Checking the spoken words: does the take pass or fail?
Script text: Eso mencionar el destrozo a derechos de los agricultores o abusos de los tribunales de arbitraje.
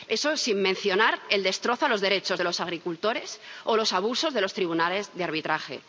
fail